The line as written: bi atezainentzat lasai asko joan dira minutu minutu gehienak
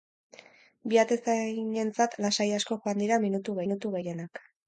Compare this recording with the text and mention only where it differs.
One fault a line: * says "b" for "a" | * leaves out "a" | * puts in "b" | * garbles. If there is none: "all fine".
all fine